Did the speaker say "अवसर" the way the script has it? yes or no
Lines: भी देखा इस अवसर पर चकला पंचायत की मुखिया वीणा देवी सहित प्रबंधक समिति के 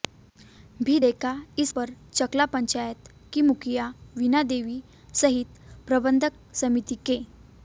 no